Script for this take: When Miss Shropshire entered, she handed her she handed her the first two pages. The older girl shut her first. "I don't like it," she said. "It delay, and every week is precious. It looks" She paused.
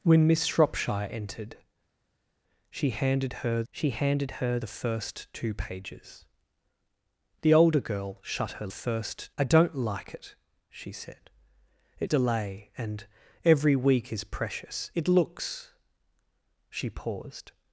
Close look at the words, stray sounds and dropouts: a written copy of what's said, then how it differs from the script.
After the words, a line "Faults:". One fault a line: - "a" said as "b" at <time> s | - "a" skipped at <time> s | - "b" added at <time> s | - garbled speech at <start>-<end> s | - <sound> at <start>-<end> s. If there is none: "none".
When Miss Shropshire entered, she handed her she handed her the first two pages. The older girl shut her first. "I don't like it," she said. "It delay, and every week is precious. It looks" She paused.
Faults:
none